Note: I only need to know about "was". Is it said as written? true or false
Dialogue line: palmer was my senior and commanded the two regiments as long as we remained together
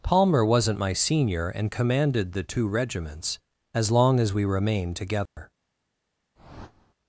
false